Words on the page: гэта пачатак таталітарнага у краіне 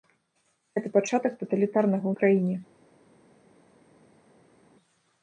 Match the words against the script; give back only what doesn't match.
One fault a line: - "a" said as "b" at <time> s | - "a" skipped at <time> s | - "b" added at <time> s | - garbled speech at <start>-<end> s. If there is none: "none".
none